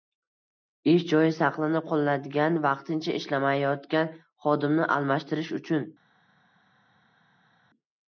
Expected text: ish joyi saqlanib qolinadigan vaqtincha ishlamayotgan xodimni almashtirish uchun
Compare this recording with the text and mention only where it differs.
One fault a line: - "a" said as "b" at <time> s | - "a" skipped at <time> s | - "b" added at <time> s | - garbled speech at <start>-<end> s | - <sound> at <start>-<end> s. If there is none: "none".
none